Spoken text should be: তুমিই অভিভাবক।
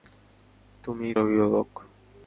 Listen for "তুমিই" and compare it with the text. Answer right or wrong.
right